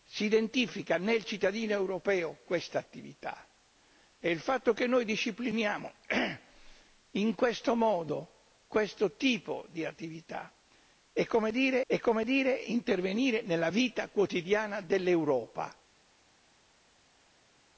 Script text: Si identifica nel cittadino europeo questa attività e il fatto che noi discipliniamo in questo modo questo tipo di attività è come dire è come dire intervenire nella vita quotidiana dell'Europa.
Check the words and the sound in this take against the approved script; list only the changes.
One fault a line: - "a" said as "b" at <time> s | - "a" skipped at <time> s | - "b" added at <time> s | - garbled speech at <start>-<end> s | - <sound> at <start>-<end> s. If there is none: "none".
none